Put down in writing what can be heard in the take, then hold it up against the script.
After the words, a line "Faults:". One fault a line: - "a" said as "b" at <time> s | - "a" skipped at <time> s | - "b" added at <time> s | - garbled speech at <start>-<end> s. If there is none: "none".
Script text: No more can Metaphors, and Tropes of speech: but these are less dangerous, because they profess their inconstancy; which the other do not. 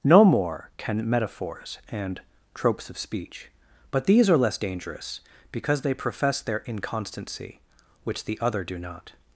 No more can Metaphors, and Tropes of speech: but these are less dangerous, because they profess their inconstancy; which the other do not.
Faults:
none